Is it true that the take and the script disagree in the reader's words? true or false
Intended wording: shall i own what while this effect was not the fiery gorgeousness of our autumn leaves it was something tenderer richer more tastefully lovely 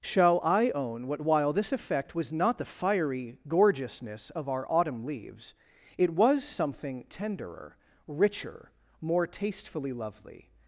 false